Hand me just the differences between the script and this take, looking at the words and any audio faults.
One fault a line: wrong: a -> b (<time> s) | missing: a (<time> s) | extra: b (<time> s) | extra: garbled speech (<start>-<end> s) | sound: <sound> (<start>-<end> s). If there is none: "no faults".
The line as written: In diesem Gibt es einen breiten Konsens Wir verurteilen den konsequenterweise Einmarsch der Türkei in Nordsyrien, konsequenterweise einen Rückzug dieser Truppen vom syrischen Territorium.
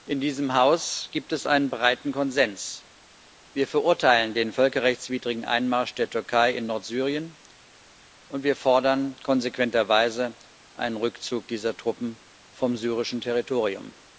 extra: Haus (0.6 s)
wrong: konsequenterweise -> völkerrechtswidrigen (4.5 s)
extra: und wir fordern (8.3 s)